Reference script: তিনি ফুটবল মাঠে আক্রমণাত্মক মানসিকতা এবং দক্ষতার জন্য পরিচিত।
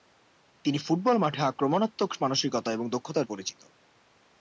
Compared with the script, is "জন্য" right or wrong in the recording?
wrong